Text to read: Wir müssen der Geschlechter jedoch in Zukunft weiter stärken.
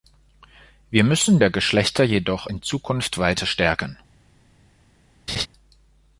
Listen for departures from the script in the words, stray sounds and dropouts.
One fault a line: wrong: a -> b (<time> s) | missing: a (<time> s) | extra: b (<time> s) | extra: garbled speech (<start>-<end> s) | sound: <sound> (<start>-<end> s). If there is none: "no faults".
sound: laugh (5.3-5.5 s)